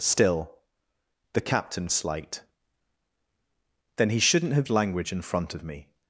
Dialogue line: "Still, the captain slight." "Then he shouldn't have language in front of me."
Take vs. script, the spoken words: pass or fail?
pass